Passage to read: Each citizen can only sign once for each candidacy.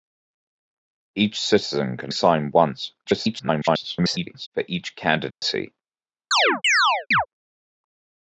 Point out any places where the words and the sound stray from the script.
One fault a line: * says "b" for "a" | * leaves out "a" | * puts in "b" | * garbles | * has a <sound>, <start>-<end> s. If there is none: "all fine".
* leaves out "only"
* garbles
* has a dropout, 5.3-5.4 s
* has a chirp, 6.3-7.3 s